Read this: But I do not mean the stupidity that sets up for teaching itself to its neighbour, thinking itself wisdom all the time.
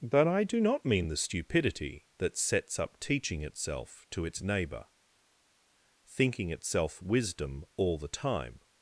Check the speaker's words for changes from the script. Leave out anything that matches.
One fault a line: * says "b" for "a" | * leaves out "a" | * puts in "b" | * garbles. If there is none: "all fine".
* leaves out "for"